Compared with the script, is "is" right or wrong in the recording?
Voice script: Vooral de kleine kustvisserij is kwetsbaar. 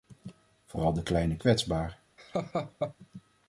wrong